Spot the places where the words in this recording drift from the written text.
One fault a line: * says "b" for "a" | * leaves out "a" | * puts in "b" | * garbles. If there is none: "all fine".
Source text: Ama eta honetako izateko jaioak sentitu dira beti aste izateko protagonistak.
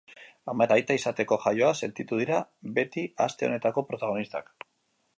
* says "aita" for "honetako"
* says "honetako" for "izateko"